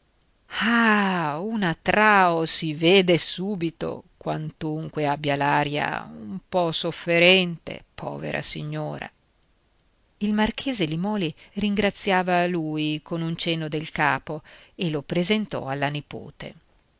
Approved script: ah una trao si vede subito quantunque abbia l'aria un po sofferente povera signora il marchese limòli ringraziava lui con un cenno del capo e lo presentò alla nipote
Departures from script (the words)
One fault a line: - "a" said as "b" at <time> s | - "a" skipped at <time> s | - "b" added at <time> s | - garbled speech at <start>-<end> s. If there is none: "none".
none